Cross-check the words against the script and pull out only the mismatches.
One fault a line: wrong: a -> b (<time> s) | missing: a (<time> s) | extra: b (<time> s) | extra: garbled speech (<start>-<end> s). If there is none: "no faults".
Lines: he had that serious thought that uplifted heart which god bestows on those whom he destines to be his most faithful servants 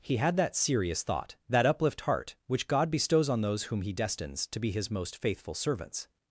wrong: uplifted -> uplift (1.6 s)